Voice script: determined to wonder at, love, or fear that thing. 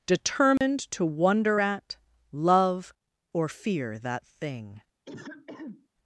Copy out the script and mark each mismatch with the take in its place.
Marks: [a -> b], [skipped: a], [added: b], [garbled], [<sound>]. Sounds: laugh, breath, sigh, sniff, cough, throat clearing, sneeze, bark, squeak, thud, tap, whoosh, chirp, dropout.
determined [dropout] to wonder at, love, or fear that thing. [throat clearing]